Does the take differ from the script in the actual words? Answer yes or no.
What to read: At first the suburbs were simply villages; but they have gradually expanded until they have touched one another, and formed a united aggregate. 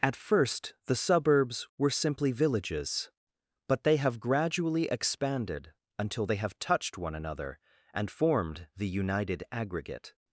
yes